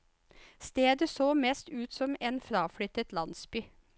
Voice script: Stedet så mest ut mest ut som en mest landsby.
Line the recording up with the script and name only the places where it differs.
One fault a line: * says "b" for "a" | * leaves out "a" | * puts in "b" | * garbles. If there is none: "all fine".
* leaves out "mest ut"
* says "fraflyttet" for "mest"